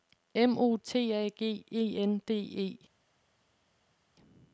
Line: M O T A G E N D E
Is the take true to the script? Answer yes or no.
yes